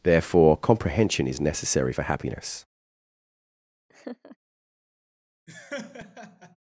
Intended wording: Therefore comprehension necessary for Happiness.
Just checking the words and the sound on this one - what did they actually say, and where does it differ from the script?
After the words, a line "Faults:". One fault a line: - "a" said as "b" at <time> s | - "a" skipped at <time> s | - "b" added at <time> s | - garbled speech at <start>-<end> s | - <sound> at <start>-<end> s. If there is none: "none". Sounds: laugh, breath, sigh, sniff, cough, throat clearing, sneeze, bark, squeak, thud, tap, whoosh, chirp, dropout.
Therefore comprehension is necessary for Happiness.
Faults:
- "is" added at 1.3 s
- laugh at 3.9-4.4 s
- laugh at 5.5-6.6 s